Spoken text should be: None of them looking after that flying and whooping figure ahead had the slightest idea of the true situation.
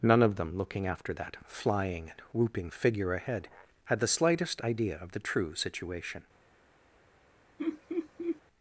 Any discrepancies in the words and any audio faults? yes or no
yes